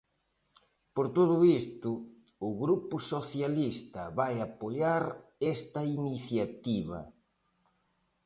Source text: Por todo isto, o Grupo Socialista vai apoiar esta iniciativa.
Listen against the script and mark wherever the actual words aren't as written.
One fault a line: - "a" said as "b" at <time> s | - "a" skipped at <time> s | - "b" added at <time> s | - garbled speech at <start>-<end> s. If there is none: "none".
none